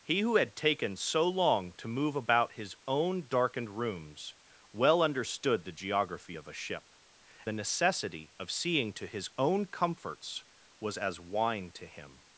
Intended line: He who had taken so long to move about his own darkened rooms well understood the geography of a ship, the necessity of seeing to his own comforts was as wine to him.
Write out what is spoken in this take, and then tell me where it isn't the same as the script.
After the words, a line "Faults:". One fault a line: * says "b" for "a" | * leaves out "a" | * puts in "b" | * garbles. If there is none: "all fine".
He who had taken so long to move about his own darkened rooms well understood the geography of a ship, the necessity of seeing to his own comforts was as wine to him.
Faults:
all fine